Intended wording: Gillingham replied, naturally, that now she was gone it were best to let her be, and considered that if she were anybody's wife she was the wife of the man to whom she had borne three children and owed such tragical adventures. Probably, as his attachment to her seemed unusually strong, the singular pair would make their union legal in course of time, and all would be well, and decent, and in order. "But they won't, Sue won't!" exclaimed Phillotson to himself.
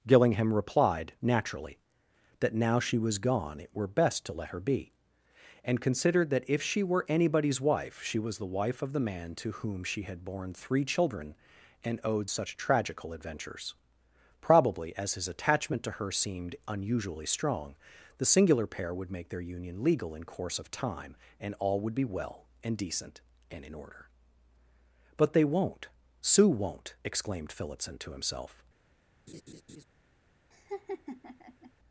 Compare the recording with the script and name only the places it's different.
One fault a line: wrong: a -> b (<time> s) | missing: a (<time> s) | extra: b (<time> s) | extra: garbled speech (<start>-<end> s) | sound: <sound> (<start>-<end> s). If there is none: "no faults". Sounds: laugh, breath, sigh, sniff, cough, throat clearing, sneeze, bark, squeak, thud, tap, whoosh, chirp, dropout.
sound: laugh (29.3-29.8 s)
sound: laugh (30.5-31.7 s)